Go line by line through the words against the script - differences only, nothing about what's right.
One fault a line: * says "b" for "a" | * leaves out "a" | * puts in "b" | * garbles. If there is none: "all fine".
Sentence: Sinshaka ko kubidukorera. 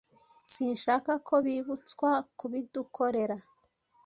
* puts in "bibutswa"